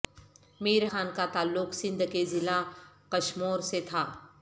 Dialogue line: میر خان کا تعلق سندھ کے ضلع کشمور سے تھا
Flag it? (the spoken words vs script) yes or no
no